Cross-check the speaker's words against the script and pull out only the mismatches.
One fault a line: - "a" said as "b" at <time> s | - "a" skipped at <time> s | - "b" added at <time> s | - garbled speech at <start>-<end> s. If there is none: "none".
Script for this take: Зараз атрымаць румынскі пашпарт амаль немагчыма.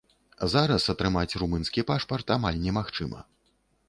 none